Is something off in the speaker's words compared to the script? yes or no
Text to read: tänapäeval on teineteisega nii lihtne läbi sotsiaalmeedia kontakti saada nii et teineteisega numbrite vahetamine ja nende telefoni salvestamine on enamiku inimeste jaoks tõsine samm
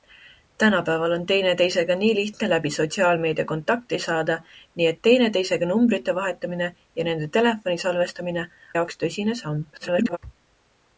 yes